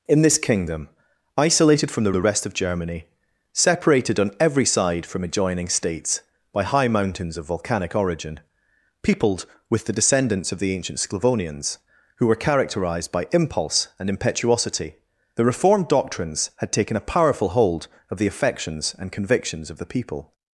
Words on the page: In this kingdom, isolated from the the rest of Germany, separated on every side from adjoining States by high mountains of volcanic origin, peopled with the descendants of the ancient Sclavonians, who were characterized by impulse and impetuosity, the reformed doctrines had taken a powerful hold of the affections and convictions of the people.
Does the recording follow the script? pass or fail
pass